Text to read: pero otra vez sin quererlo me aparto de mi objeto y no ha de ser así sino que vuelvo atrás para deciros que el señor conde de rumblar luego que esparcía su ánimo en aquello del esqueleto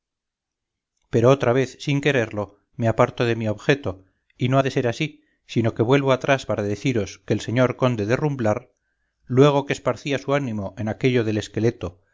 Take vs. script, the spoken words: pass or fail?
pass